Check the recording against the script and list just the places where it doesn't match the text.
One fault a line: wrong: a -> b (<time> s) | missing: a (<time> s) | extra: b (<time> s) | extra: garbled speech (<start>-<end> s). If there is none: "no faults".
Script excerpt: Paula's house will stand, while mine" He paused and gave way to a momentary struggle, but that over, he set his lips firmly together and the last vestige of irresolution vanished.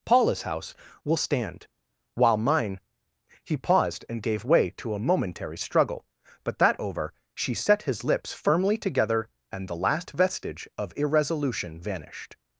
wrong: he -> she (7.3 s)